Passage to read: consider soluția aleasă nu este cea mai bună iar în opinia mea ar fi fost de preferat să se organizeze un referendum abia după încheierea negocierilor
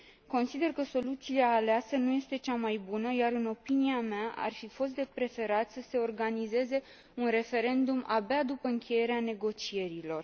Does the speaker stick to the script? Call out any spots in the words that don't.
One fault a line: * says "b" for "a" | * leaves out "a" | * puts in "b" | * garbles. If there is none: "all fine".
* puts in "că"